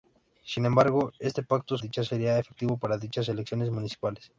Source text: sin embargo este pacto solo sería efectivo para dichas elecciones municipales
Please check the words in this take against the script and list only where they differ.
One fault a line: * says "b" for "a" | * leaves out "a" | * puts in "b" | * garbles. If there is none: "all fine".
* says "dichas" for "solo"